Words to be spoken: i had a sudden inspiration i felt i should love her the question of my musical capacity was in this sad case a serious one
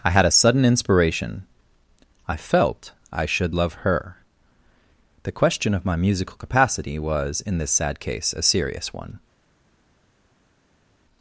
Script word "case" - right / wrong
right